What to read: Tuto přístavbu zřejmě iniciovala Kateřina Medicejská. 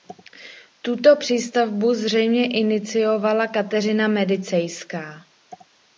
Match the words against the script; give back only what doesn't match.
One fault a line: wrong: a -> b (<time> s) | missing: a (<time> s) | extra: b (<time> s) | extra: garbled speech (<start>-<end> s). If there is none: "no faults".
no faults